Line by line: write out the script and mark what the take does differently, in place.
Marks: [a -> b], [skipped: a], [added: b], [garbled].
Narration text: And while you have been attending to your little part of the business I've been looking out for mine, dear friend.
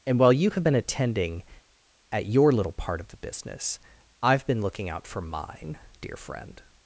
And while you have been attending [to -> at] your little part of the business I've been looking out for mine, dear friend.